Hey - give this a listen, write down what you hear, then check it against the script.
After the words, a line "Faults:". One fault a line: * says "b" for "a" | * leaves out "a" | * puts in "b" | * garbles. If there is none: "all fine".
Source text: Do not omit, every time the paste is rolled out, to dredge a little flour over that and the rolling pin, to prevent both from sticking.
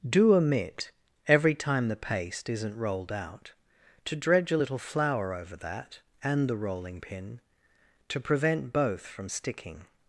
Do omit, every time the paste isn't rolled out, to dredge a little flour over that and the rolling pin, to prevent both from sticking.
Faults:
* leaves out "not"
* says "isn't" for "is"